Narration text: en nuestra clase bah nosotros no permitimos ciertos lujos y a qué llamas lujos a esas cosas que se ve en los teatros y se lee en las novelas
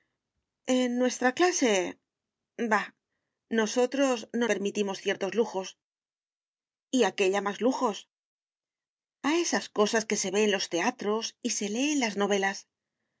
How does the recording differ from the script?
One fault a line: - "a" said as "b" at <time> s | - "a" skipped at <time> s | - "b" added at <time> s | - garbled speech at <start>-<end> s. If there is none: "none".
none